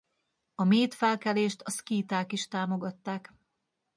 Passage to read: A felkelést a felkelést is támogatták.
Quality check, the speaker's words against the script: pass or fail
fail